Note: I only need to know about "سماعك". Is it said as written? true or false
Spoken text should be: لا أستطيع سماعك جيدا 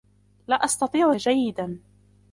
false